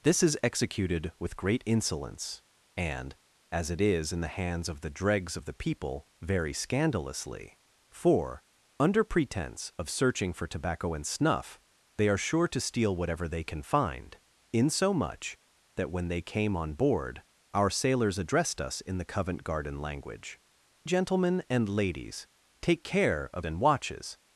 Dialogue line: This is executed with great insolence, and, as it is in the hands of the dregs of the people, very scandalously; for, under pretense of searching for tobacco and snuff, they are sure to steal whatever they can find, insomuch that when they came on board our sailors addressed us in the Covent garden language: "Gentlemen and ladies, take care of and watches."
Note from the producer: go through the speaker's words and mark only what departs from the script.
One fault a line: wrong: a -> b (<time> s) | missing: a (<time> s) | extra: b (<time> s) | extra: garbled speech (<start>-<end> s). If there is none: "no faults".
no faults